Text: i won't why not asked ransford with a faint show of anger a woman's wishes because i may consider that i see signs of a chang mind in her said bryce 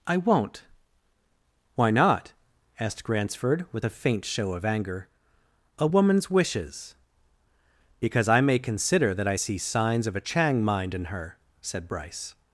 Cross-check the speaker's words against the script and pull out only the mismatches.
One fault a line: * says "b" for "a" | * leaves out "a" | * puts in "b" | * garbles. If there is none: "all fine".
all fine